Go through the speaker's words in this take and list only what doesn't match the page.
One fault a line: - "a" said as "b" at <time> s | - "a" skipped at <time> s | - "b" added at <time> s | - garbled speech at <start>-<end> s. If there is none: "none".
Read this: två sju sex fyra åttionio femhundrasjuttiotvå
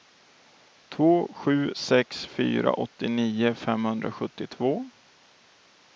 none